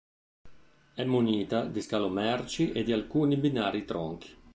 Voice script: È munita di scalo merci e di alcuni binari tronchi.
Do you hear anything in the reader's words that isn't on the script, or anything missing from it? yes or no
no